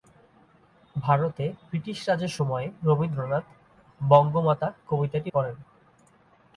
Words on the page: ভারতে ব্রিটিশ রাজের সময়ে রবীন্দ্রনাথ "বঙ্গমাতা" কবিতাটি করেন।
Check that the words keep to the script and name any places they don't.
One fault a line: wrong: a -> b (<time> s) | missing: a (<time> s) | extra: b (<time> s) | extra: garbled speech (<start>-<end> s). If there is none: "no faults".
no faults